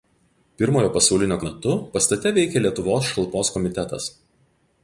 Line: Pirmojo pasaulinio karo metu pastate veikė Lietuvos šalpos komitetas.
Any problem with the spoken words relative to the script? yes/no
yes